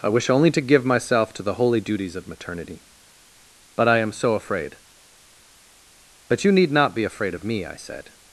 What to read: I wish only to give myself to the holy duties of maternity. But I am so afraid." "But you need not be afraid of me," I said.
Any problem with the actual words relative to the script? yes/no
no